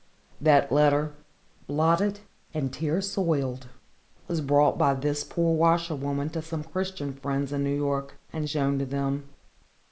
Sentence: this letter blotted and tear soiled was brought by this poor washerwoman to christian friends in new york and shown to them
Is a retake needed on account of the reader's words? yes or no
yes